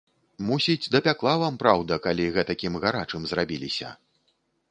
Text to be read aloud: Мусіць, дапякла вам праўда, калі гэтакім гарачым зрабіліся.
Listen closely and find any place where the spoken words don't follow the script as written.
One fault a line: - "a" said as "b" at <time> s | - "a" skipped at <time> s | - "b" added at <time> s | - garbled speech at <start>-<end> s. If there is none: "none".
none